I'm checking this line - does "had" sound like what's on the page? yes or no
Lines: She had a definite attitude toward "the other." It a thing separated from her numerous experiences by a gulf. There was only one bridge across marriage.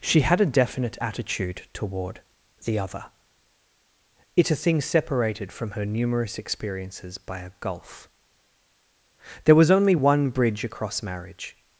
yes